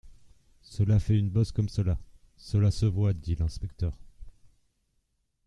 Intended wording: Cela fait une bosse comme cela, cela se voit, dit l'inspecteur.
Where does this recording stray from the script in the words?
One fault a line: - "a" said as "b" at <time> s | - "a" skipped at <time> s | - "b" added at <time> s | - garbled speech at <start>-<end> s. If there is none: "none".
none